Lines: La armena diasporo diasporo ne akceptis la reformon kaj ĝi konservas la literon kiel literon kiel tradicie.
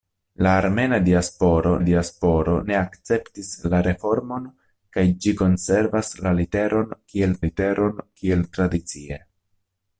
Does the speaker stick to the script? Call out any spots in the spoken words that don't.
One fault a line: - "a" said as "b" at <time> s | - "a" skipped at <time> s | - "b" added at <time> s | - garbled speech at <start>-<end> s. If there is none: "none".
none